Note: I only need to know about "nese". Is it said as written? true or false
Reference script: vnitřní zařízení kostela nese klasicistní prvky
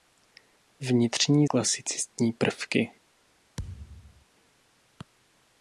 false